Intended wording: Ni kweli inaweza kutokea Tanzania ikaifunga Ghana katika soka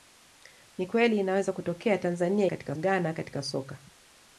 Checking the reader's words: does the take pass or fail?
fail